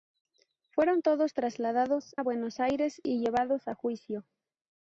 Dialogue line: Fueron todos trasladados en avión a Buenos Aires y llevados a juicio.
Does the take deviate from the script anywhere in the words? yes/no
yes